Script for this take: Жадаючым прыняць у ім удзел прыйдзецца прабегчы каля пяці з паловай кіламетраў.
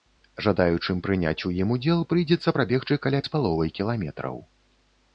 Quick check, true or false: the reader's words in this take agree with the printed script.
false